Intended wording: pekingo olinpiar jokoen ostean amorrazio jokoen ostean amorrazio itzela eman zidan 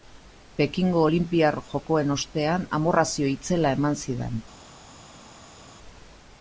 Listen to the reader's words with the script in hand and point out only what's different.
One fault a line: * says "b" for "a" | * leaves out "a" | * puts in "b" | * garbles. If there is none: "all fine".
* leaves out "jokoen ostean amorrazio"